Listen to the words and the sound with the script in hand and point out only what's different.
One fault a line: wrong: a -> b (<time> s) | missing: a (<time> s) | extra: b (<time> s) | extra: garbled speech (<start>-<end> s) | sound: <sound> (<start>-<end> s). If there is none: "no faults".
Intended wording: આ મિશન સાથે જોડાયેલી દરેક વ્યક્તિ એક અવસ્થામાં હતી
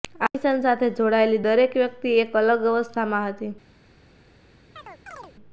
extra: અલગ (2.4 s)
sound: chirp (4.8-5.3 s)